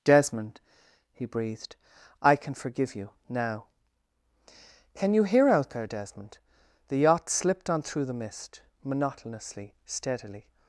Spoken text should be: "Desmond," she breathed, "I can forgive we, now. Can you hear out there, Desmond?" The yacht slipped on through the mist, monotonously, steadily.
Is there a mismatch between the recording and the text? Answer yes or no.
yes